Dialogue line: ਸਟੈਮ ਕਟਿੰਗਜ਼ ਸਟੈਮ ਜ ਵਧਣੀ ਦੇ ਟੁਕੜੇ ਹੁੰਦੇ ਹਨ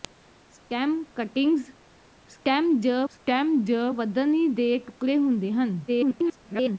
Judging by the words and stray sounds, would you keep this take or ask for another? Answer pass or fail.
fail